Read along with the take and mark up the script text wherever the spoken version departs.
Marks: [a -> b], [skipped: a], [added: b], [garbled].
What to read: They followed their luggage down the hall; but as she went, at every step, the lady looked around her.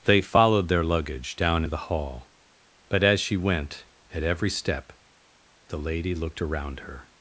They followed their luggage down the hall; but as she went, at every step, the lady looked around her.